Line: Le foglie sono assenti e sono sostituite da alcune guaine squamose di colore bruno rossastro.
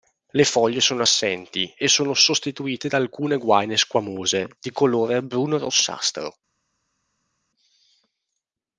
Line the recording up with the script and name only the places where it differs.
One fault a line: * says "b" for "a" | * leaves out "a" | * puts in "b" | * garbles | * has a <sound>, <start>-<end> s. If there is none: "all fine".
all fine